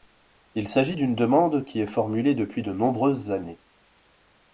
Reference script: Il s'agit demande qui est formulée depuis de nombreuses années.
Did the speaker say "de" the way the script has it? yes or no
yes